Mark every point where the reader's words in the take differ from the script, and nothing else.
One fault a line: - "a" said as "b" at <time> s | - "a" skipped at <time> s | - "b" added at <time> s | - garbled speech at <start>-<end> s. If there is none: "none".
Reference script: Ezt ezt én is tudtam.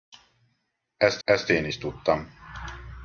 none